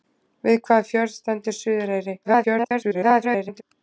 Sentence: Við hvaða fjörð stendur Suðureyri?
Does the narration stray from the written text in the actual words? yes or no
yes